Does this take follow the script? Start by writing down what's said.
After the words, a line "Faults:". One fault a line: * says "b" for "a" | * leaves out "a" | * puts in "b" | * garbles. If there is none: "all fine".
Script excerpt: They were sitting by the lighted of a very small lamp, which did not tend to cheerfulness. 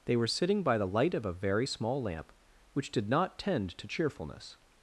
They were sitting by the light of a very small lamp, which did not tend to cheerfulness.
Faults:
* says "light" for "lighted"